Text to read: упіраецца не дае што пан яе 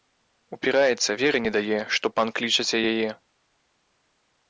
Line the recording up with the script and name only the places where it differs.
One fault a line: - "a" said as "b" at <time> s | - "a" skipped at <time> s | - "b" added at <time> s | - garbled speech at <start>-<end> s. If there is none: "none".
- "веры" added at 1.2 s
- "клічаце" added at 2.4 s